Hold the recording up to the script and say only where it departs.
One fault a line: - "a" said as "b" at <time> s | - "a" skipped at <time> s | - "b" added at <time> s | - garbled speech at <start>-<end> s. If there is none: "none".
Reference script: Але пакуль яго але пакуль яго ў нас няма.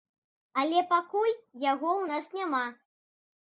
- "але пакуль яго" skipped at 1.9 s